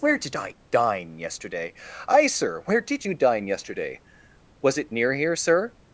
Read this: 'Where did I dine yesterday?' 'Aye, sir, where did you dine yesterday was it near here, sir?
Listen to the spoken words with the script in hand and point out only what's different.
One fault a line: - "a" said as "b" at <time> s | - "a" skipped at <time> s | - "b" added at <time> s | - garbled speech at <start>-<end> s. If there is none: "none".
none